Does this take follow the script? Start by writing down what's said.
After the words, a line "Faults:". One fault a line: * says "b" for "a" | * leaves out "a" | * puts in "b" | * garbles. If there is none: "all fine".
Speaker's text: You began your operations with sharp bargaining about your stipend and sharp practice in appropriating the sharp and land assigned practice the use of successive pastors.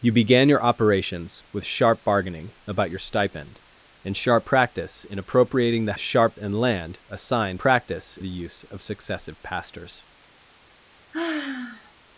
You began your operations with sharp bargaining about your stipend and sharp practice in appropriating the sharp and land assigned practice the use of successive pastors.
Faults:
all fine